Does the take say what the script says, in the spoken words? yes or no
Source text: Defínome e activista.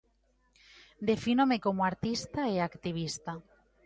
no